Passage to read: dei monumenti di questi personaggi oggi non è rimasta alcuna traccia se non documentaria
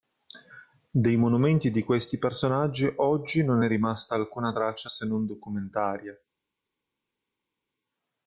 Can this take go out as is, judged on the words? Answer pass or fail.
pass